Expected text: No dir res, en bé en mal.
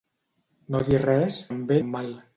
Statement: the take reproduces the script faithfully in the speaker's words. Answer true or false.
true